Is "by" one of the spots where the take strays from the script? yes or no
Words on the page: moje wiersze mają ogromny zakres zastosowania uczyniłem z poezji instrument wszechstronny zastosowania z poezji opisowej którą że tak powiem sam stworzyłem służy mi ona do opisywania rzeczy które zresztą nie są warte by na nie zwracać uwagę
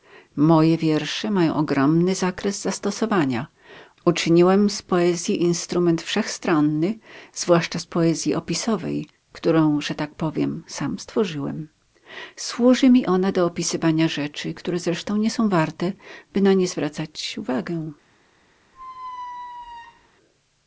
no